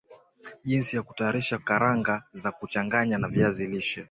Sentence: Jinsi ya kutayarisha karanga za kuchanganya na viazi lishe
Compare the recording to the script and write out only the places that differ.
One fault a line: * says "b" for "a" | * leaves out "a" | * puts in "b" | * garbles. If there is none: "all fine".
all fine